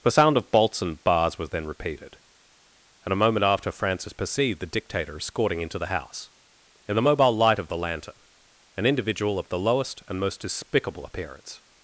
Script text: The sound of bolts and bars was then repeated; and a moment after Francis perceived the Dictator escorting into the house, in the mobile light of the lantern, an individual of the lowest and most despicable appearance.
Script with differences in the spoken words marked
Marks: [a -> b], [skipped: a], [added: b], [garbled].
The sound of bolts and bars was then repeated; and a moment after Francis perceived the Dictator escorting into the house, in the mobile light of the lantern, an individual of the lowest and most despicable appearance.